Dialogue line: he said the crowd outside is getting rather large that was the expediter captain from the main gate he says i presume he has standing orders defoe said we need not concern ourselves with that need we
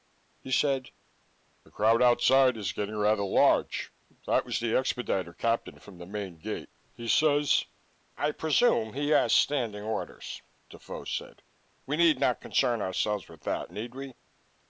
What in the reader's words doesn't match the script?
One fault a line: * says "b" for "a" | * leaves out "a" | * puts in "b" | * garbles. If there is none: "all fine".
all fine